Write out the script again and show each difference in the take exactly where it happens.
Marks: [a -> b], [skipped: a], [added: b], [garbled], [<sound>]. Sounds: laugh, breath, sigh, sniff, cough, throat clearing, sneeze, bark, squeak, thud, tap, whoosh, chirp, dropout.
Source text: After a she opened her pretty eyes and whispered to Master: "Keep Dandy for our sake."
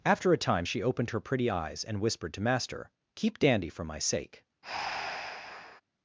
After a [added: time] she opened her pretty eyes and whispered to Master: "Keep Dandy for [our -> my] sake." [breath]